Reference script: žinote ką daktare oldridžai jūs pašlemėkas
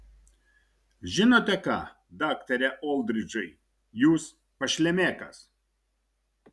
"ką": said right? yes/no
yes